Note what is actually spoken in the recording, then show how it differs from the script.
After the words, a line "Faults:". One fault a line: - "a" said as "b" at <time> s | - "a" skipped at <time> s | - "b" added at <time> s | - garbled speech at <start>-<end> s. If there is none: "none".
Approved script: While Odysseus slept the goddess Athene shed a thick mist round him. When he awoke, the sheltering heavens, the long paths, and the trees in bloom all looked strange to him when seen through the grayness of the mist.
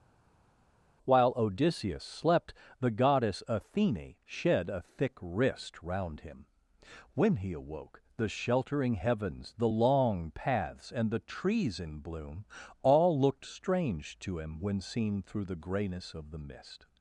While Odysseus slept the goddess Athene shed a thick wrist round him. When he awoke, the sheltering heavens, the long paths, and the trees in bloom all looked strange to him when seen through the grayness of the mist.
Faults:
- "mist" said as "wrist" at 5.2 s